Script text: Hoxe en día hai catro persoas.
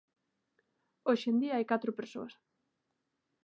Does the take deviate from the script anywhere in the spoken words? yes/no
no